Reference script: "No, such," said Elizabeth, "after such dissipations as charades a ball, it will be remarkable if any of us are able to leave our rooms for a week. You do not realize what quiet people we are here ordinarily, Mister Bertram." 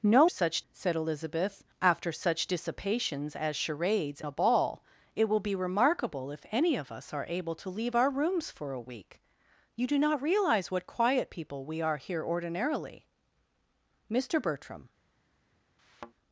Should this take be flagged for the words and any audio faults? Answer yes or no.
yes